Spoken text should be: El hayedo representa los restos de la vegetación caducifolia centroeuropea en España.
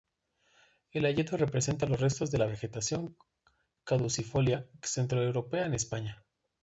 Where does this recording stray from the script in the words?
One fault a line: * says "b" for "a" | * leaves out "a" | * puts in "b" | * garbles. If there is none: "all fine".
all fine